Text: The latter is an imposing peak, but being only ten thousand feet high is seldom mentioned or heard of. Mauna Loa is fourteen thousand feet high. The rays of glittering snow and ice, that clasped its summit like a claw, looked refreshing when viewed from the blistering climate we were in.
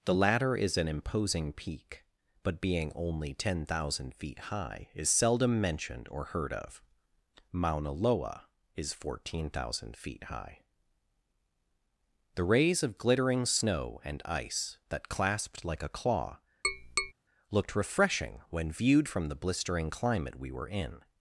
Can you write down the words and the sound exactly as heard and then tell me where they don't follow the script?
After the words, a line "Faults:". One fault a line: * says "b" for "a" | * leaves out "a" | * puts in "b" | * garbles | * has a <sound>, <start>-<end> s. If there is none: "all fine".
The latter is an imposing peak, but being only ten thousand feet high is seldom mentioned or heard of. Mauna Loa is fourteen thousand feet high. The rays of glittering snow and ice, that clasped like a claw, looked refreshing when viewed from the blistering climate we were in.
Faults:
* leaves out "its summit"
* has a tap, 16.6-17.1 s